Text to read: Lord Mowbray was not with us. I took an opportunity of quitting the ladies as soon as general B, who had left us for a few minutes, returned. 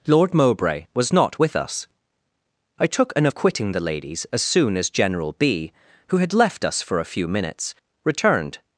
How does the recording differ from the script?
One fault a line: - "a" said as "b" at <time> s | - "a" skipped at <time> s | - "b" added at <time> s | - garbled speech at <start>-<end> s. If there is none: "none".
- "opportunity" skipped at 3.3 s